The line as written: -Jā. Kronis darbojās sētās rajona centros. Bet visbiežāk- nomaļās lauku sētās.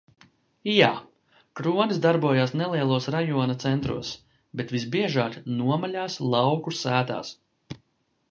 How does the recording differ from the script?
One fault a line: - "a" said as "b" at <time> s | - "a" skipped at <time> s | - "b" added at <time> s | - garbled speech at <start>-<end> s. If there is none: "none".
- "sētās" said as "nelielos" at 2.6 s